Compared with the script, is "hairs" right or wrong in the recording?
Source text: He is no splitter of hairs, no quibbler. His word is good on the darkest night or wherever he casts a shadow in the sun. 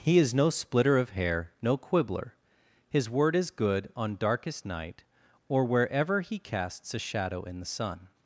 wrong